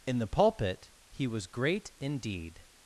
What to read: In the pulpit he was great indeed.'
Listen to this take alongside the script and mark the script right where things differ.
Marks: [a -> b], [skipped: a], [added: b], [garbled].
In the pulpit he was great indeed.'